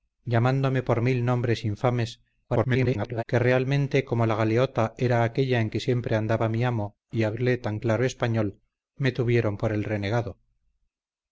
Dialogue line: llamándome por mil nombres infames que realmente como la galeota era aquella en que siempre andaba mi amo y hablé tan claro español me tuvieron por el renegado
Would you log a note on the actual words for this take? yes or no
yes